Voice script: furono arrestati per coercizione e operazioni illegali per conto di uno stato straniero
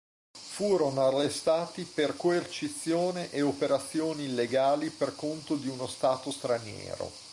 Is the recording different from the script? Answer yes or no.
no